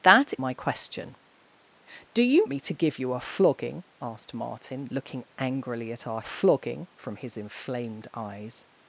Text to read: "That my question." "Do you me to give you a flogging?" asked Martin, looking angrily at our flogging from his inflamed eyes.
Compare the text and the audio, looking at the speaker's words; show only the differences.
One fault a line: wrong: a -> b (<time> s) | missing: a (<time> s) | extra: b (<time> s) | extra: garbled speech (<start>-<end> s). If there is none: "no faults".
no faults